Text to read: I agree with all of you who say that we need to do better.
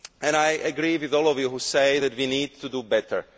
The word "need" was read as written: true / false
true